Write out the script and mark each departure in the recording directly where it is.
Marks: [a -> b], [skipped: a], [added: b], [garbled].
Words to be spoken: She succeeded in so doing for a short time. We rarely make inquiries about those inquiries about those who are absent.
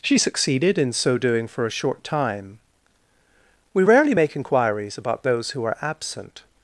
She succeeded in so doing for a short time. We rarely make inquiries about those [skipped: inquiries about those] who are absent.